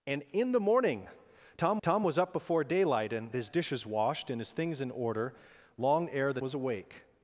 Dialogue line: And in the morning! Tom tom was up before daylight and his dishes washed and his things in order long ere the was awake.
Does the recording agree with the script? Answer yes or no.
yes